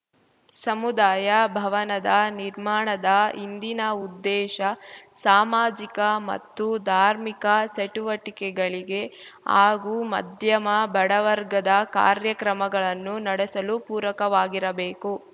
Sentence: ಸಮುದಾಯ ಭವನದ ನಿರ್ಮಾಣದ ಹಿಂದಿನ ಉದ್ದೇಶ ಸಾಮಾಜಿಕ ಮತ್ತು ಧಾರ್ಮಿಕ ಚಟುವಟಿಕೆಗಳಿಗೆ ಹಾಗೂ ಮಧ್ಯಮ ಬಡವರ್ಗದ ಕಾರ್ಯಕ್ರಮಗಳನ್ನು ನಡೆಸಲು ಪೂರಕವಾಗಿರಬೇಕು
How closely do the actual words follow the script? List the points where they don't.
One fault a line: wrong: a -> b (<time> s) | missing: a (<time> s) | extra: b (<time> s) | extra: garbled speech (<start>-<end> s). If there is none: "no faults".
no faults